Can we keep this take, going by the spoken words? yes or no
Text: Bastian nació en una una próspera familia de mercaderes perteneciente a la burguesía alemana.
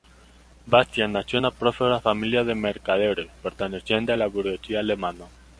no